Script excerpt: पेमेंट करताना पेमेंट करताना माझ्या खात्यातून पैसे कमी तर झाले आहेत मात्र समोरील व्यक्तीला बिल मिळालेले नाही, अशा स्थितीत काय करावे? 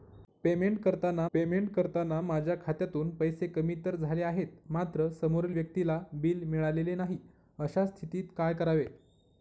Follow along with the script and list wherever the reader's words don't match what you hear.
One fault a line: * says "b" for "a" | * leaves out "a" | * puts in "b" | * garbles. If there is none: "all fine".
all fine